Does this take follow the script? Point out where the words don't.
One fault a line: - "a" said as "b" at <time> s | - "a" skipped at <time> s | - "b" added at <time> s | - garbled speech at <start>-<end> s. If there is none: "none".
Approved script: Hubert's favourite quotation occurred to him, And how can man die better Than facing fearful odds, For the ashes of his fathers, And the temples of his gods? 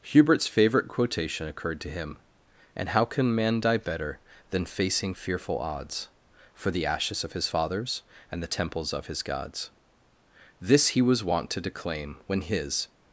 - "This he was wont to declaim when his" added at 10.6 s